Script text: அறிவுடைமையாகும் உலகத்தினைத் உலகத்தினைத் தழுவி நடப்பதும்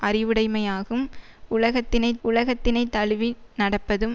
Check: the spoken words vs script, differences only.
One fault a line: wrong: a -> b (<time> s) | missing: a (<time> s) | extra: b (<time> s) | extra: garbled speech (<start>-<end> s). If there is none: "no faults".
no faults